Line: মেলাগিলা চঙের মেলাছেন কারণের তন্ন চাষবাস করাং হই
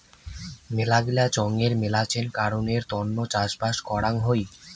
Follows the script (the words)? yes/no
yes